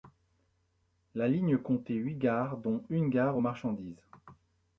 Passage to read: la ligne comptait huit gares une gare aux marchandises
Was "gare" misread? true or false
false